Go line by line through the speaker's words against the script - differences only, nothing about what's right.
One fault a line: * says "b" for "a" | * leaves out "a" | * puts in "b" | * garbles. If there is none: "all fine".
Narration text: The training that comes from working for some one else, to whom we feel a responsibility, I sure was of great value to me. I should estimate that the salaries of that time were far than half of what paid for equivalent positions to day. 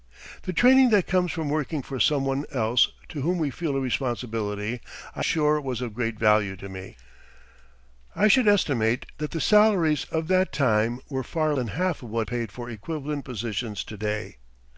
all fine